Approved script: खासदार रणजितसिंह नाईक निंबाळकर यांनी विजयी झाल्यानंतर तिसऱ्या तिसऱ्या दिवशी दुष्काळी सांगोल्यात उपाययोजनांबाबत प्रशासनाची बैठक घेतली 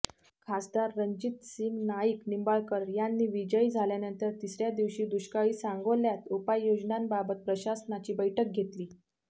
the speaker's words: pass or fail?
fail